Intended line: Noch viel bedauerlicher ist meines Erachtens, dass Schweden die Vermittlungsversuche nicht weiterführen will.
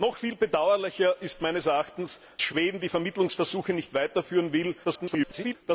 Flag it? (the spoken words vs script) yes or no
yes